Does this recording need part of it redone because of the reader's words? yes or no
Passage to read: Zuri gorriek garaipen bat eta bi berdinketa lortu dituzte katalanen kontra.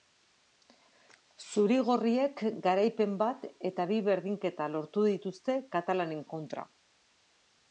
no